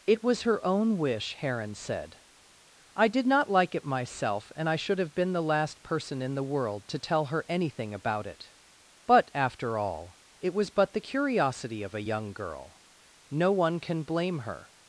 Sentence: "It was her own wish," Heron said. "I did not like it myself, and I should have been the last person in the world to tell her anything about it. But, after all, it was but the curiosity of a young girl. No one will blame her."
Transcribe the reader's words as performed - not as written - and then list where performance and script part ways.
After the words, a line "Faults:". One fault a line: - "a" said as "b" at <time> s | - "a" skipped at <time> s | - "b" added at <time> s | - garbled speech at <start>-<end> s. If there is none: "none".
"It was her own wish," Heron said. "I did not like it myself, and I should have been the last person in the world to tell her anything about it. But, after all, it was but the curiosity of a young girl. No one can blame her."
Faults:
- "will" said as "can" at 13.8 s